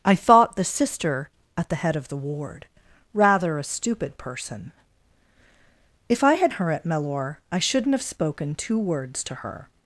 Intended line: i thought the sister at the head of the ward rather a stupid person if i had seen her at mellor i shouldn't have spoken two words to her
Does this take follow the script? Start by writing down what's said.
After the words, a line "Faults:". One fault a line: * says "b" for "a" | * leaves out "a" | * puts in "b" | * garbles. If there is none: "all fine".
i thought the sister at the head of the ward rather a stupid person if i had her at mellor i shouldn't have spoken two words to her
Faults:
* leaves out "seen"